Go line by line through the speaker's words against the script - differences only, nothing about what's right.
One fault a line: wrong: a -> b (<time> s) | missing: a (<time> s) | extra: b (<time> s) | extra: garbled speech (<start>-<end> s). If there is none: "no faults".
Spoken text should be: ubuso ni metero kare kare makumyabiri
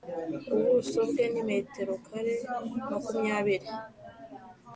extra: bwe (1.1 s)
missing: kare (2.3 s)